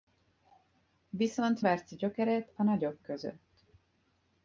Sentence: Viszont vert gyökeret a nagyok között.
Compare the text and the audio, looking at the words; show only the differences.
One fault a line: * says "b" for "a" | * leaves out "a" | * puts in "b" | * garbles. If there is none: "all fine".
all fine